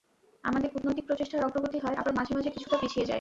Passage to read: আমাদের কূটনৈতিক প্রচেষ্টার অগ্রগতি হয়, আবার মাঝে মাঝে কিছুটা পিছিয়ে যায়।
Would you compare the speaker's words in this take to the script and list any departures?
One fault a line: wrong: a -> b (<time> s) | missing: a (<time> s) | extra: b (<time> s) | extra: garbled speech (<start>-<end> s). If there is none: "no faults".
no faults